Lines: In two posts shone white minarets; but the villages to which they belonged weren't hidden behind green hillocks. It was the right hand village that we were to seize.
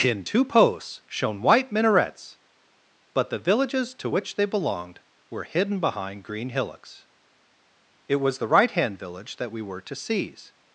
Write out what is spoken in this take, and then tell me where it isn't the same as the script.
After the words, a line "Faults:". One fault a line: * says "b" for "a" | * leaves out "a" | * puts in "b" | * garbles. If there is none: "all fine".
In two posts shone white minarets; but the villages to which they belonged were hidden behind green hillocks. It was the right hand village that we were to seize.
Faults:
* says "were" for "weren't"